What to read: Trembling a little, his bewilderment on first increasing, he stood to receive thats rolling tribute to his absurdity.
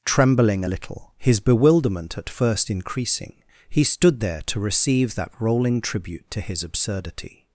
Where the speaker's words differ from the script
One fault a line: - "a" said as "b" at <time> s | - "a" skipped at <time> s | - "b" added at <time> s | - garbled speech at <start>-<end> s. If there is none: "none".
- "on" said as "at" at 2.2 s
- "there" added at 4.2 s
- "thats" said as "that" at 5.1 s